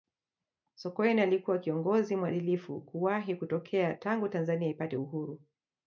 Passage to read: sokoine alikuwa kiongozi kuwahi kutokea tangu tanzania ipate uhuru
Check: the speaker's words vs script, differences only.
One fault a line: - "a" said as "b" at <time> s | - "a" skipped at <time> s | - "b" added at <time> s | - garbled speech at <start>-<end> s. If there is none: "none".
- "mwadilifu" added at 2.1 s